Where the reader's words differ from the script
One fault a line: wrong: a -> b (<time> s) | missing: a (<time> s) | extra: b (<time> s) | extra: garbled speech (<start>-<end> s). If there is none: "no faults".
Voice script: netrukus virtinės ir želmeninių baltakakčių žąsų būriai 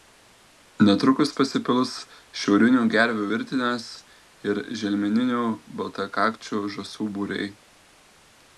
extra: pasipils šiaurinių gervių (1.4 s)